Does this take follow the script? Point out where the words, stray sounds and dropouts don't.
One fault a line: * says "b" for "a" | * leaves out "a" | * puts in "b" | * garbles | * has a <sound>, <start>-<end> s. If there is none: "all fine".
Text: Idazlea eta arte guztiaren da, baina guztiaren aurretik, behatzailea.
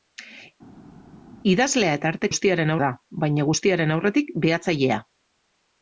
all fine